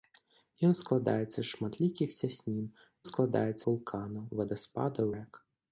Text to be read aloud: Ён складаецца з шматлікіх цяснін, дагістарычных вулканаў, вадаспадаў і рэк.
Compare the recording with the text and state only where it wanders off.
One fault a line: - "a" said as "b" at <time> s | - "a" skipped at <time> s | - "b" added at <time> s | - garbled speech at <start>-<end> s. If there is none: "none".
- "дагістарычных" said as "складаецца" at 3.1 s
- "і" skipped at 5.1 s